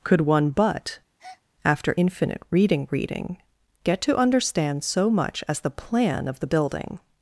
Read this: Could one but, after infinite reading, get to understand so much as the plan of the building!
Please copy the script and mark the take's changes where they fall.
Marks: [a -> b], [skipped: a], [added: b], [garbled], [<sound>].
Could one but, [breath] after infinite reading, [added: reading] get to understand so much as the plan of the building!